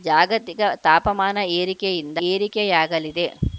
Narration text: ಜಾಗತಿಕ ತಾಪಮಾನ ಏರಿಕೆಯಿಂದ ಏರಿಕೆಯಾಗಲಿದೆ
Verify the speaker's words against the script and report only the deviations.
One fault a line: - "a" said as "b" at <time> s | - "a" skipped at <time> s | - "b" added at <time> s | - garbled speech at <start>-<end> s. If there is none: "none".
none